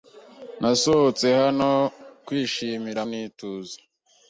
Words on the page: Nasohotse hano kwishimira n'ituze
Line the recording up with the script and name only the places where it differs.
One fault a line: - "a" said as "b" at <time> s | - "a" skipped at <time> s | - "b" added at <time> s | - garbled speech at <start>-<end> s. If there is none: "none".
none